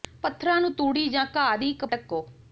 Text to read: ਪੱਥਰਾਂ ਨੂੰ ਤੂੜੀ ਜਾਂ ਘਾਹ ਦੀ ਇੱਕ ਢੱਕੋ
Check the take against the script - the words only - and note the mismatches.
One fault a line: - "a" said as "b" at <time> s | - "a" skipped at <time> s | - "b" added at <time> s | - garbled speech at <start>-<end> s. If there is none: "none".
none